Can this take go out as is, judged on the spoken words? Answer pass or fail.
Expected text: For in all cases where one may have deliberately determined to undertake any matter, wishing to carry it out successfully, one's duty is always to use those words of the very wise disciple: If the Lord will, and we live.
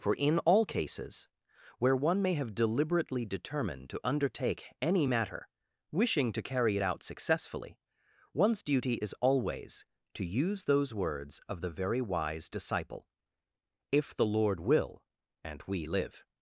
pass